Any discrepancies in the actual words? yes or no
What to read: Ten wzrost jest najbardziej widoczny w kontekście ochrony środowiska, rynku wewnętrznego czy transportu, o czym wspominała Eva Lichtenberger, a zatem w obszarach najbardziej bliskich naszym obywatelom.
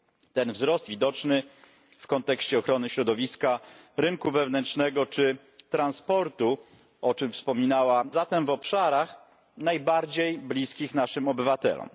yes